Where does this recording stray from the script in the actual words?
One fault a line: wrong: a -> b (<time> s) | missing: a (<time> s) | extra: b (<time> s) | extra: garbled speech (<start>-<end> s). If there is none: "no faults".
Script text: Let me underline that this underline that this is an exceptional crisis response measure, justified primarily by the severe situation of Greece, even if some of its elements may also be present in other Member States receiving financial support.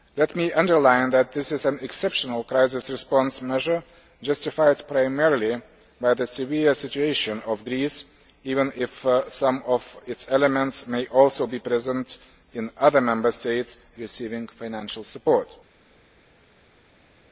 missing: underline that this (1.5 s)